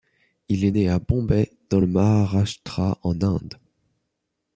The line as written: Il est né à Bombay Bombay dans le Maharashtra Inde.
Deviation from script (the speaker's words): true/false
true